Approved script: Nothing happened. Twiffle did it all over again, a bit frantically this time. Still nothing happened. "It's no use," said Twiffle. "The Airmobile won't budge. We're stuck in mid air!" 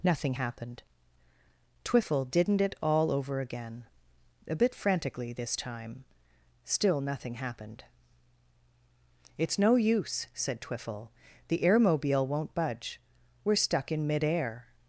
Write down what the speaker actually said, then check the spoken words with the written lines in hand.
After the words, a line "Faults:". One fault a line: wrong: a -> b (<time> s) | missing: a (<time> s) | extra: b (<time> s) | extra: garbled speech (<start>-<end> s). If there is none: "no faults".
Nothing happened. Twiffle didn't it all over again, a bit frantically this time. Still nothing happened. "It's no use," said Twiffle. "The Airmobile won't budge. We're stuck in mid air!"
Faults:
wrong: did -> didn't (2.3 s)